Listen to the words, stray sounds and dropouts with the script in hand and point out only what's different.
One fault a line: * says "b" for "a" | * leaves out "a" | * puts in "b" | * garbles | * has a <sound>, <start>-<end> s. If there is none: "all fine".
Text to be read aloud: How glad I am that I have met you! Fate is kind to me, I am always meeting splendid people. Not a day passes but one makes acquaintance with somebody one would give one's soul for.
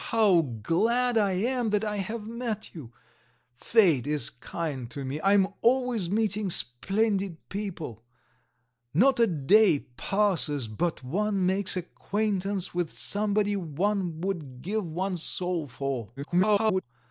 * garbles